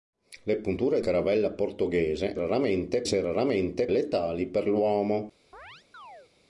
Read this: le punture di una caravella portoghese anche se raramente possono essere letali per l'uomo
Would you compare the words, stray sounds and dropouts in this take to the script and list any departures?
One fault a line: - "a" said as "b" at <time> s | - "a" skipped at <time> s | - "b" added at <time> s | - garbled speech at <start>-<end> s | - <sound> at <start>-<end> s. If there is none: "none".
- "di una" skipped at 1.0 s
- "anche" said as "raramente" at 2.3 s
- "possono essere" skipped at 3.9 s
- chirp at 5.5-6.3 s